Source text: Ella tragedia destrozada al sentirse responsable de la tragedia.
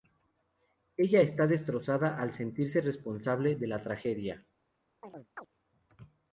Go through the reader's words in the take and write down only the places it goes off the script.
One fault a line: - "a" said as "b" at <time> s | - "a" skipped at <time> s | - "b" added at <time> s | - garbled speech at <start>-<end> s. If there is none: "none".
- "tragedia" said as "está" at 1.2 s